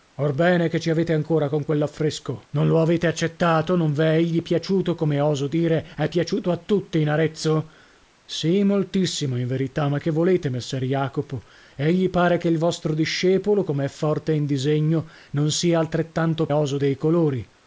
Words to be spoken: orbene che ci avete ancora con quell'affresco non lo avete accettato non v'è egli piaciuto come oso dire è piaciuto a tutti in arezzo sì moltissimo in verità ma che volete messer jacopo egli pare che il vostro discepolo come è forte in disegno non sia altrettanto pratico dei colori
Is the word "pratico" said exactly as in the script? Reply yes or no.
no